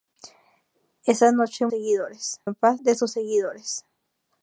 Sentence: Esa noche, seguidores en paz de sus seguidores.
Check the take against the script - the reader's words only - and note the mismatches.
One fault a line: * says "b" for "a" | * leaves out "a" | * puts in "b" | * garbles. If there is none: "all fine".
all fine